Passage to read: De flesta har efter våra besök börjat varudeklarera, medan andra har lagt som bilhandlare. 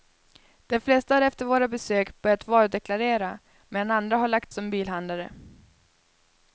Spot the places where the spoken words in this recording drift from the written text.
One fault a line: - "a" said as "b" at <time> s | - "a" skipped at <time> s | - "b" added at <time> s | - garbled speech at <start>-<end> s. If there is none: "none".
none